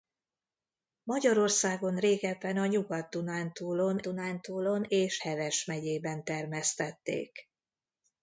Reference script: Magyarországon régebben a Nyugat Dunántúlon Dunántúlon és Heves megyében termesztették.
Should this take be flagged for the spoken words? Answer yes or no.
no